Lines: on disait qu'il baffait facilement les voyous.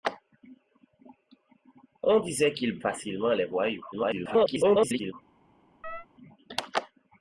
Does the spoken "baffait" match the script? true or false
false